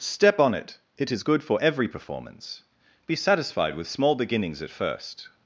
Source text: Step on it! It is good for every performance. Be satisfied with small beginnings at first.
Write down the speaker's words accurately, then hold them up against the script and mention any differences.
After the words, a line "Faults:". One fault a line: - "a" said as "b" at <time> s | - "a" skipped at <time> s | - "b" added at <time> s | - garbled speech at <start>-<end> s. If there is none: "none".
Step on it! It is good for every performance. Be satisfied with small beginnings at first.
Faults:
none